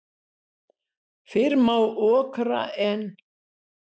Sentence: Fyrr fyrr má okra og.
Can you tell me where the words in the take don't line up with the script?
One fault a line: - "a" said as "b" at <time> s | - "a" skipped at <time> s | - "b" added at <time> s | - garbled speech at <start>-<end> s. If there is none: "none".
- "fyrr" skipped at 1.6 s
- "og" said as "en" at 2.9 s